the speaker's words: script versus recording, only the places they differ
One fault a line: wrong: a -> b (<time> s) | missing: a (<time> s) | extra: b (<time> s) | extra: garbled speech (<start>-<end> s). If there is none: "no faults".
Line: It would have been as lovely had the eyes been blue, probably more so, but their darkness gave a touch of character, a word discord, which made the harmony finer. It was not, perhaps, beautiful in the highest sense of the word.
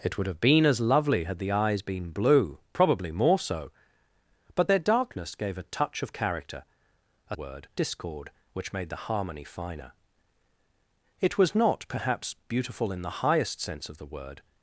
no faults